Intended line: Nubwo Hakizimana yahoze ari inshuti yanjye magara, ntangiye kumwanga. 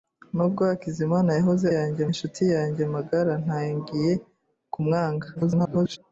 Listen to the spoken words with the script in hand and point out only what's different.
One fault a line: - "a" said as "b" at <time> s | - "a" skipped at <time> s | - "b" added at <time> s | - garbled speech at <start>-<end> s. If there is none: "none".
- "ari" said as "yanjye" at 1.7 s
- garbled speech at 5.3-6.0 s